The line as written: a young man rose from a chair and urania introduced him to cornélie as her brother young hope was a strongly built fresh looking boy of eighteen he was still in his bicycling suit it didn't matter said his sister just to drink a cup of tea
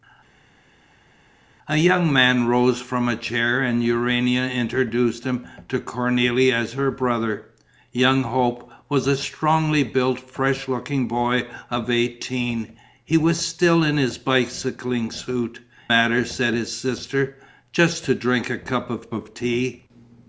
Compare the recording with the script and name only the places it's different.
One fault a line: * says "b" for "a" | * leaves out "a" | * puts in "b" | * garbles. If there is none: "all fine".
* leaves out "it didn't"
* puts in "of"